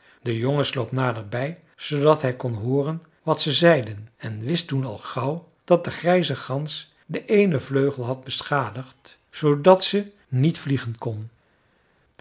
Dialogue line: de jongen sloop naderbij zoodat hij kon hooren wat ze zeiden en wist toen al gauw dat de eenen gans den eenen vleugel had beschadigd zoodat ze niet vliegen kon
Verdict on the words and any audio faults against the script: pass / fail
fail